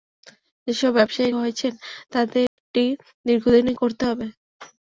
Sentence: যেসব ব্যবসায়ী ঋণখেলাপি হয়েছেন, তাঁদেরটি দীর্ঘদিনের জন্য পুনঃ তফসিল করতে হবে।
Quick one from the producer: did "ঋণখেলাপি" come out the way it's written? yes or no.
no